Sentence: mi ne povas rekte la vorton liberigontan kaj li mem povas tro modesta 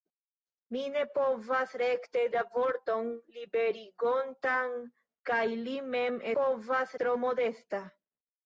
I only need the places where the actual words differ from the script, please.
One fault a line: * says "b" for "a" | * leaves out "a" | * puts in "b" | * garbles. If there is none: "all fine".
all fine